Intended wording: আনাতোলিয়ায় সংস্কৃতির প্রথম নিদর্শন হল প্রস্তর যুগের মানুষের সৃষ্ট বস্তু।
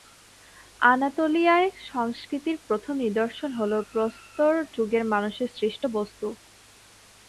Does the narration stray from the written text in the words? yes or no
no